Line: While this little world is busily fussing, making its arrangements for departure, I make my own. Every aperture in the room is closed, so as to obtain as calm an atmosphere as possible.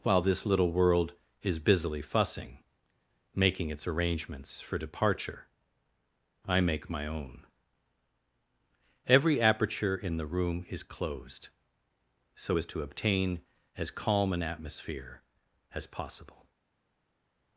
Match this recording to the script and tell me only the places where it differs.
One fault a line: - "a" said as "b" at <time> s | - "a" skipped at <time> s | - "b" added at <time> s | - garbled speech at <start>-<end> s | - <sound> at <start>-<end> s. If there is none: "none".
none